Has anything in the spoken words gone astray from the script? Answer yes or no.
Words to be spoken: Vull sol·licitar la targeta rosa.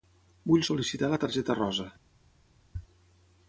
no